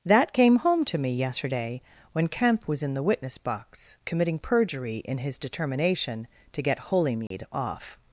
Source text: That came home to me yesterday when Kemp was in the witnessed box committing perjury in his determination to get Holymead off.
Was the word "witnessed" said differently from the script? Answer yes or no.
yes